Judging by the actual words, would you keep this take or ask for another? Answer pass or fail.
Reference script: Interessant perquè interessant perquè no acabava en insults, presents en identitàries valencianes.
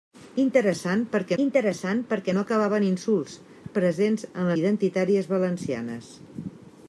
pass